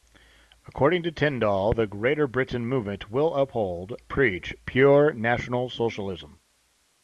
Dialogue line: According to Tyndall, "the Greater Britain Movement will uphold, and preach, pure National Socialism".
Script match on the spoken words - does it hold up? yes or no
no